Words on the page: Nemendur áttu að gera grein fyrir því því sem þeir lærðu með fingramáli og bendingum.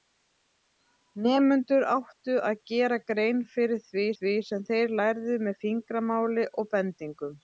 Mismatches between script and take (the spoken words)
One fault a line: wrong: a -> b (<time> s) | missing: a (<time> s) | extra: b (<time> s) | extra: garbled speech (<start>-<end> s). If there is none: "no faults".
no faults